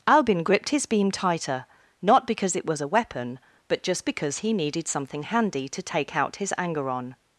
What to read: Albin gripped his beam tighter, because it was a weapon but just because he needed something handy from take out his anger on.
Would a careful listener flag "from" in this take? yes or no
yes